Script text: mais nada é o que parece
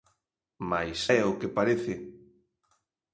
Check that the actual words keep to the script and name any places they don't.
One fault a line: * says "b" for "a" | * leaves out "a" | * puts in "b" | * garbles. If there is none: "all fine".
* leaves out "nada"